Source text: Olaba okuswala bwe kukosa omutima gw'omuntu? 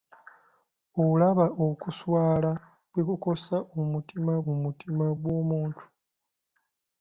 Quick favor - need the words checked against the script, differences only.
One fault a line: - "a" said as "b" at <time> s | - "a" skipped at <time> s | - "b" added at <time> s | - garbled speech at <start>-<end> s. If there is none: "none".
- "omutima" added at 4.5 s